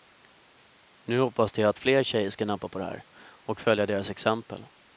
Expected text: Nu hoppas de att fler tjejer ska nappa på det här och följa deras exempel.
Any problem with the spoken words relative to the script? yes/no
no